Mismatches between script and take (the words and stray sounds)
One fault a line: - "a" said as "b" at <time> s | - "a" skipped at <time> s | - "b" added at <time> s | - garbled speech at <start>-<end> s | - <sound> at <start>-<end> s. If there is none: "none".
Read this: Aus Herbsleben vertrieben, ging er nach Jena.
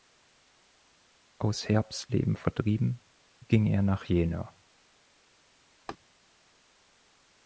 - laugh at 5.9-6.0 s